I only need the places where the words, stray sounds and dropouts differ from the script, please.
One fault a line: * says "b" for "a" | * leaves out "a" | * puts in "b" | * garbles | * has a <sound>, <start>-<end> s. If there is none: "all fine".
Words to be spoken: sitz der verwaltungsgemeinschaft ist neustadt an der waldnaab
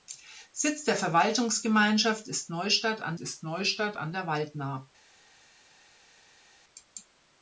* puts in "ist neustadt an"